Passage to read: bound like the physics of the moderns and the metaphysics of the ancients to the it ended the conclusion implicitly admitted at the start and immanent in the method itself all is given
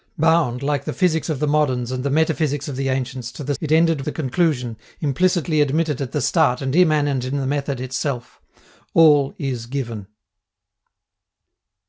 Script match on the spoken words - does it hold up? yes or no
yes